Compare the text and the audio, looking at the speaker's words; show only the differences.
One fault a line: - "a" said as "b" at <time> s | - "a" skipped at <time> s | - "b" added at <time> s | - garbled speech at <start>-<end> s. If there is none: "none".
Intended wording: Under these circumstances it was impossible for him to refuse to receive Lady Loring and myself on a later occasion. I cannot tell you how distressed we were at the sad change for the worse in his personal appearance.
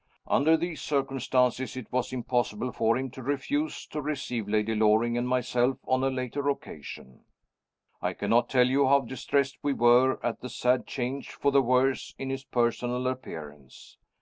none